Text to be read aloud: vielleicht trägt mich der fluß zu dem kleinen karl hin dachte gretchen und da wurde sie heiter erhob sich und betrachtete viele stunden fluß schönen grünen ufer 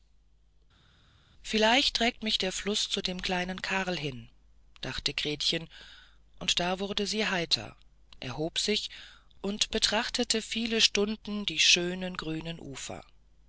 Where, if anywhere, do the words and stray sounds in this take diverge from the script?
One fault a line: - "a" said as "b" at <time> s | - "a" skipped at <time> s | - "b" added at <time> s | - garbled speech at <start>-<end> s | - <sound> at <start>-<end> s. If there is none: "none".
- "fluß" said as "die" at 11.4 s